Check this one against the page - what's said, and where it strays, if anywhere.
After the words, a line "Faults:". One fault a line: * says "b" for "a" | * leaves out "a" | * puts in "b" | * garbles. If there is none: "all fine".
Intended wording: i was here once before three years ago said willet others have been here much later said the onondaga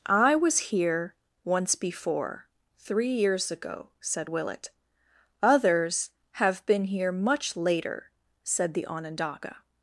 i was here once before three years ago said willet others have been here much later said the onondaga
Faults:
all fine